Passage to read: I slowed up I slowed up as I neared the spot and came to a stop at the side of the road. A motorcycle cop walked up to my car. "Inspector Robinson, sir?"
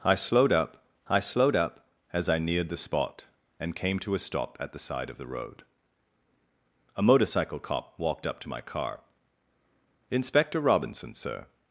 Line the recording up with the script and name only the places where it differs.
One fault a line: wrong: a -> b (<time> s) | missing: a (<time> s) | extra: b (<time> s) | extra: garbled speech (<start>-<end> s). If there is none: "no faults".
no faults